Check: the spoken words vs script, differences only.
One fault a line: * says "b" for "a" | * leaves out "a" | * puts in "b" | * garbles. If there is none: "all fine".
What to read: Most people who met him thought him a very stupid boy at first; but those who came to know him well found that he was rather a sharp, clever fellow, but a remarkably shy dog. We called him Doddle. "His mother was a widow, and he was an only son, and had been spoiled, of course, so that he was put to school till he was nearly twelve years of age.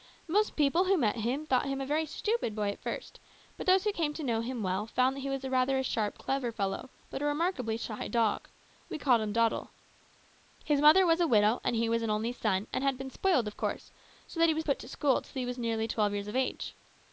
all fine